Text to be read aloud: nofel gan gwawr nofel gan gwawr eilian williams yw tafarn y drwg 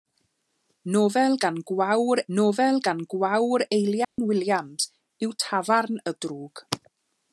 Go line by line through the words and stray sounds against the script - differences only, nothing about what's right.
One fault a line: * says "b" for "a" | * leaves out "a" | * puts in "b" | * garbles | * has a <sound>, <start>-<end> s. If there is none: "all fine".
* has a dropout, 4.0-4.2 s